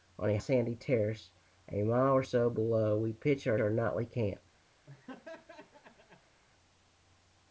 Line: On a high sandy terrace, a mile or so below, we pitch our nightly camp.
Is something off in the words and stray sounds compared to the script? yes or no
yes